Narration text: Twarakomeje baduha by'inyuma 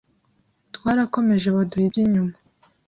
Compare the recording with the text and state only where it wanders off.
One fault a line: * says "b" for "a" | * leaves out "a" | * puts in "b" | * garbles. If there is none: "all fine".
all fine